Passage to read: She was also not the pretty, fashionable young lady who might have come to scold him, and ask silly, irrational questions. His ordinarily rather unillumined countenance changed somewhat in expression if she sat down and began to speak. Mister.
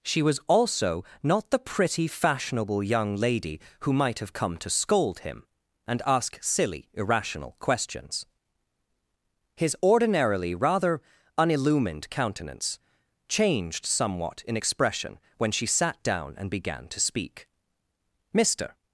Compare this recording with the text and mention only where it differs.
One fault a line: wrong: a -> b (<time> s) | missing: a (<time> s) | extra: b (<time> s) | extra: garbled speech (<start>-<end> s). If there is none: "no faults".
wrong: if -> when (15.4 s)